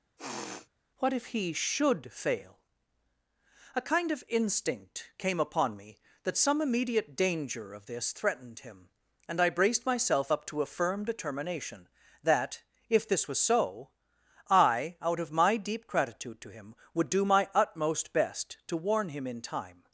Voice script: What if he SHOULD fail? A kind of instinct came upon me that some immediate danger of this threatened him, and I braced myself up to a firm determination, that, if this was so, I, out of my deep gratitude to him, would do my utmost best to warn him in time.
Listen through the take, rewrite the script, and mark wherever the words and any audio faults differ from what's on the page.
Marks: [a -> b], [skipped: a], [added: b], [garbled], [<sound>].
[sniff] What if he SHOULD fail? A kind of instinct came upon me that some immediate danger of this threatened him, and I braced myself up to a firm determination, that, if this was so, I, out of my deep gratitude to him, would do my utmost best to warn him in time.